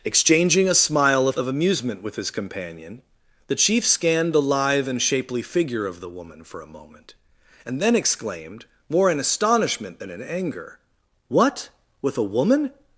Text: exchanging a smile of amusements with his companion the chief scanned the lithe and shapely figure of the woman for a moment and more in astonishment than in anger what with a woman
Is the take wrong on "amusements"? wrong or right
wrong